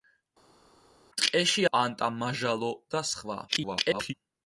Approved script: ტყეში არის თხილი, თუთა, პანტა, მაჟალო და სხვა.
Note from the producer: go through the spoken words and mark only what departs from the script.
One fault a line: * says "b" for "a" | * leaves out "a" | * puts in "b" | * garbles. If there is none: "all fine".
* leaves out "არის თხილი თუთა"
* garbles